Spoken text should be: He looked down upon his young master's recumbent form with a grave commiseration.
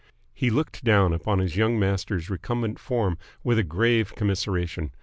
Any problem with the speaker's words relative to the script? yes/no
no